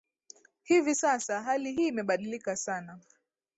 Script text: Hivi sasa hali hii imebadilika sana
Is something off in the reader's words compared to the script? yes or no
no